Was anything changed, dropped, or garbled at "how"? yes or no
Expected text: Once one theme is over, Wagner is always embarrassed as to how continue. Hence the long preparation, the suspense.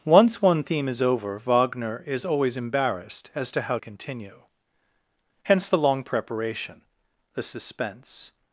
no